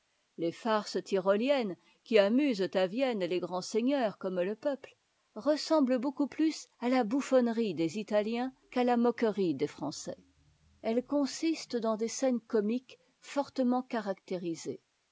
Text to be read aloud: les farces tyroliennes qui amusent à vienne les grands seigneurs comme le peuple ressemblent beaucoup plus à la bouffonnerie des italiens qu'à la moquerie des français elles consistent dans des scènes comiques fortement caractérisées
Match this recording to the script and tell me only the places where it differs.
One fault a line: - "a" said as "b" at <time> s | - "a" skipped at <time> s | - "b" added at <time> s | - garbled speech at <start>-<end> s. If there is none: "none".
none